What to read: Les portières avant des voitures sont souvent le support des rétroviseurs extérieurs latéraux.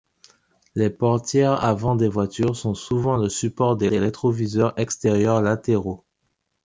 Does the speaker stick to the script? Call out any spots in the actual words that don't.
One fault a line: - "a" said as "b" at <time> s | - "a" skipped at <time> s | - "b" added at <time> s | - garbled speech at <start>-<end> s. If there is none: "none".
- "des" added at 3.9 s